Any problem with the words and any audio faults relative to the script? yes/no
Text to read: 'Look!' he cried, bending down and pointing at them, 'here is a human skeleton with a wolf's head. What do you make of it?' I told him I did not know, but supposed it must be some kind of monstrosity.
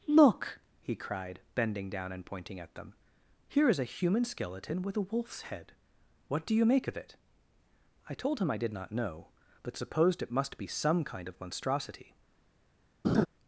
yes